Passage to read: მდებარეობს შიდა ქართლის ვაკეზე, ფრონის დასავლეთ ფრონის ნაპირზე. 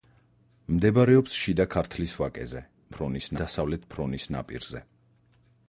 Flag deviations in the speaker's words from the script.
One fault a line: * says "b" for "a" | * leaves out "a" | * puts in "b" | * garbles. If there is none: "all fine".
all fine